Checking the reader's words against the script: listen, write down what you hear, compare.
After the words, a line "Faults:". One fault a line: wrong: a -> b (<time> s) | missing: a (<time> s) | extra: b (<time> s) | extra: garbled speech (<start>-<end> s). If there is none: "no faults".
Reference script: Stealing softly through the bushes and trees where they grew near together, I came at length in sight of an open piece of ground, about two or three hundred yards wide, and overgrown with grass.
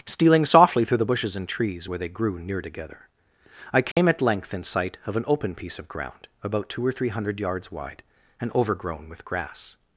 Stealing softly through the bushes and trees where they grew near together, I came at length in sight of an open piece of ground, about two or three hundred yards wide, and overgrown with grass.
Faults:
no faults